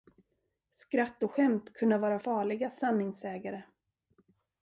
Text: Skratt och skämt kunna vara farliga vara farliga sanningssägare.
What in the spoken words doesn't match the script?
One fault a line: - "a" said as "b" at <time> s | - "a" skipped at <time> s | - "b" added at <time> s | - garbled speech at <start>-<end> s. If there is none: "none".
- "vara farliga" skipped at 2.7 s